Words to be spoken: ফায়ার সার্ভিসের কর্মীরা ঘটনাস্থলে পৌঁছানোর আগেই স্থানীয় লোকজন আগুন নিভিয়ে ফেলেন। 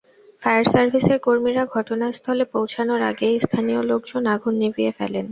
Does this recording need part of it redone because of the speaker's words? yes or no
no